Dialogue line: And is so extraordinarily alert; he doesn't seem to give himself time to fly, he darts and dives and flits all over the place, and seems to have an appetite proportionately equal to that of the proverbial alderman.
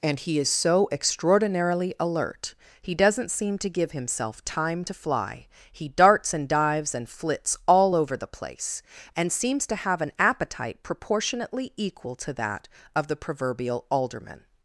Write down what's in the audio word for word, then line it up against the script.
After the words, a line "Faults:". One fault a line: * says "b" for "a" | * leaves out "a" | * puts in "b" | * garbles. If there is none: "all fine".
And he is so extraordinarily alert; he doesn't seem to give himself time to fly, he darts and dives and flits all over the place, and seems to have an appetite proportionately equal to that of the proverbial alderman.
Faults:
* puts in "he"